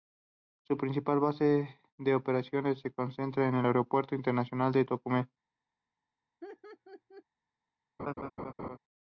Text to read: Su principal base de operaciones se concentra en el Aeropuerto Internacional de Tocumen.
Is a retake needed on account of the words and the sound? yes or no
yes